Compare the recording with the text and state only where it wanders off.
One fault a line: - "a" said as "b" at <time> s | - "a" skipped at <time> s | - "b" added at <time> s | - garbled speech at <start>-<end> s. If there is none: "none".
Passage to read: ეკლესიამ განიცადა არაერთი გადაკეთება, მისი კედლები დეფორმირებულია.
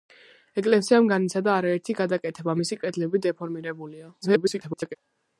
- garbled speech at 4.2-5.0 s